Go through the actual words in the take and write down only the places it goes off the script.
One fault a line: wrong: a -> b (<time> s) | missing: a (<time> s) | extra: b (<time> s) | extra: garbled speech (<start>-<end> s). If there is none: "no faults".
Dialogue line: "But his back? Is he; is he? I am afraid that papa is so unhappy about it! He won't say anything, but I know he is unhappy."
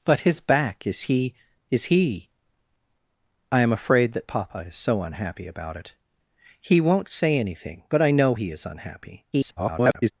extra: garbled speech (9.3-10.1 s)